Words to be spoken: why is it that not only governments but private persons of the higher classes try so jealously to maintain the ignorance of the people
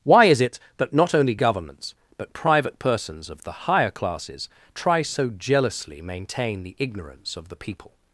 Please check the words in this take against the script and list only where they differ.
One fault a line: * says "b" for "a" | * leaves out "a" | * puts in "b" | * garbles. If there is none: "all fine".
* leaves out "to"